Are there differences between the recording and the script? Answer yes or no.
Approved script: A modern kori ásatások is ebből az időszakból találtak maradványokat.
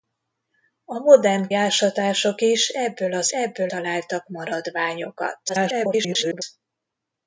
yes